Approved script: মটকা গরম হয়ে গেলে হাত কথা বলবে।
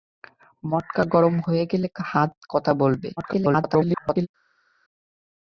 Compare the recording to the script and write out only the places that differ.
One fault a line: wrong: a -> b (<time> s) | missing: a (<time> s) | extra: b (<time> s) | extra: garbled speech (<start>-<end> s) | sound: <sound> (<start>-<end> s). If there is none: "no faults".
extra: garbled speech (3.2-4.3 s)